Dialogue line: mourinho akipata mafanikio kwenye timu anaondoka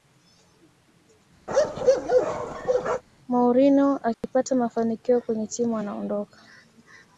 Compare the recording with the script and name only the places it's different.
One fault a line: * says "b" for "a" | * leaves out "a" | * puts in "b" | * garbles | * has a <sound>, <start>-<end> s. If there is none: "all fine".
* has a bark, 1.5-3.0 s
* has a dropout, 4.1-4.2 s